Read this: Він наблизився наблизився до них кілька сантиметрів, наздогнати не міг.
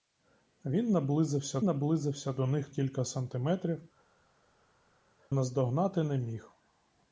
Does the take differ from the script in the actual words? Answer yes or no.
no